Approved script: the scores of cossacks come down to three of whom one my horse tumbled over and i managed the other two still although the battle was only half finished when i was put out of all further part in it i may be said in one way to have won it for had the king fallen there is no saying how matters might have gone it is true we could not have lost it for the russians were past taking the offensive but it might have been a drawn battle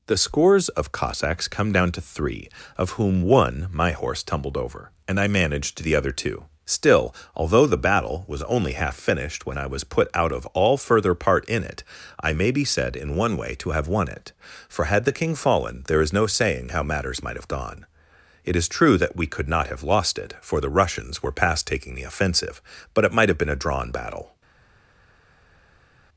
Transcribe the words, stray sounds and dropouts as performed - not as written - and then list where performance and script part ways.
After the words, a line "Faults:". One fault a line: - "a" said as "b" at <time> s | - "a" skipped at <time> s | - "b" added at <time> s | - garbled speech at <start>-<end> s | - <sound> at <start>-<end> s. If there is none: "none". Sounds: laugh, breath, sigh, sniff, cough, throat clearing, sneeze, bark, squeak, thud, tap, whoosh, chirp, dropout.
the scores of cossacks come down to three of whom one my horse tumbled over and i managed the other two still although the battle was only half finished when i was put out of all further part in it i may be said in one way to have won it for had the king fallen there is no saying how matters might have gone it is true that we could not have lost it for the russians were past taking the offensive but it might have been a drawn battle
Faults:
- "that" added at 19.0 s